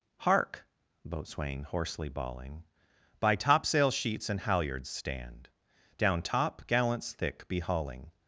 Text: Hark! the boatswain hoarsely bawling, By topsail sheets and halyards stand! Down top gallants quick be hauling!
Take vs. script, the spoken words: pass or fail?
fail